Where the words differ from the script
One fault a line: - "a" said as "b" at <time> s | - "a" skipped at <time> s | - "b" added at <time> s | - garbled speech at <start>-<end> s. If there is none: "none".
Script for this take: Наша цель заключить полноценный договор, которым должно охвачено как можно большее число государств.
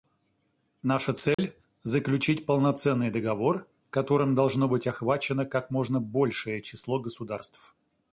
- "быть" added at 4.7 s